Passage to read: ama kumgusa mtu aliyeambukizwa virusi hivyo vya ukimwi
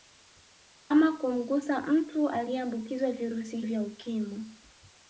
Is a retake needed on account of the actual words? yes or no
yes